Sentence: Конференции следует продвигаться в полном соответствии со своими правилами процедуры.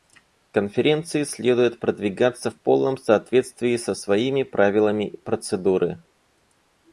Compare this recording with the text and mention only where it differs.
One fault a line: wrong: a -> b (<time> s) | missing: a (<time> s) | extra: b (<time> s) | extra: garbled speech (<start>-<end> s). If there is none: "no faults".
no faults